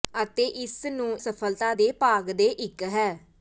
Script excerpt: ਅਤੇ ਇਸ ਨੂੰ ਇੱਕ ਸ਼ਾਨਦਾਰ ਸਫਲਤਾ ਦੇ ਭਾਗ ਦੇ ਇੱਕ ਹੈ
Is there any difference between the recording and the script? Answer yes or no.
yes